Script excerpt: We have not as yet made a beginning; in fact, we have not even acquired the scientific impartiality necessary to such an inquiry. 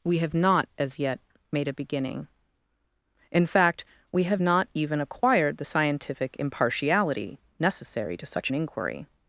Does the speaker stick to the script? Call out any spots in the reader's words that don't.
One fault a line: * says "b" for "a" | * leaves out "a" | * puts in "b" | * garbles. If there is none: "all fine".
all fine